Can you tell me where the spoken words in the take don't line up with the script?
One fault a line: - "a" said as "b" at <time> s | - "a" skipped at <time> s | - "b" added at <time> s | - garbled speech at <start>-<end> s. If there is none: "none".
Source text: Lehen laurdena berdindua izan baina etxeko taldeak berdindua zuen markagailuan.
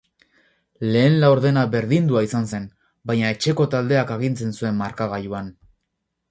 - "zen" added at 2.5 s
- "berdindua" said as "agintzen" at 4.2 s